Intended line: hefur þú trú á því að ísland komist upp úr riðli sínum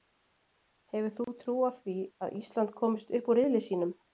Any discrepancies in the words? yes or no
no